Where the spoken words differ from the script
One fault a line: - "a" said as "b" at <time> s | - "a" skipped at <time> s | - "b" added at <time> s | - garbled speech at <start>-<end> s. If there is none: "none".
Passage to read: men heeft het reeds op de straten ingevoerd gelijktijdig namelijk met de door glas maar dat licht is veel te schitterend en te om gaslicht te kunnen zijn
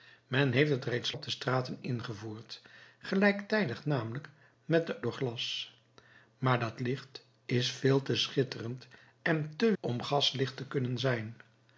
none